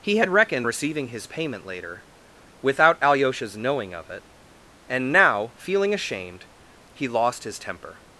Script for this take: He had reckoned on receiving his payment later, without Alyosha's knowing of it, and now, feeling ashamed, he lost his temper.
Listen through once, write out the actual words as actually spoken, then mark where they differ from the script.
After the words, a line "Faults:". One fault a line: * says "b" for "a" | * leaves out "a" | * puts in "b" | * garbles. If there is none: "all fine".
He had reckoned receiving his payment later, without Alyosha's knowing of it, and now, feeling ashamed, he lost his temper.
Faults:
* leaves out "on"